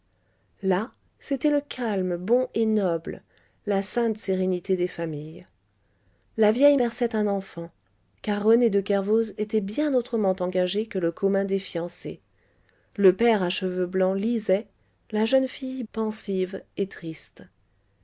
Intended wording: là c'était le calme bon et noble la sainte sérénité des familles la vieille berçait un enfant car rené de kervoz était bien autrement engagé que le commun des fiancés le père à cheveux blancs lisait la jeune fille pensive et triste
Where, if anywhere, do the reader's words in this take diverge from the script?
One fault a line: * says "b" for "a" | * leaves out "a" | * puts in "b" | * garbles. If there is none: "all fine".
all fine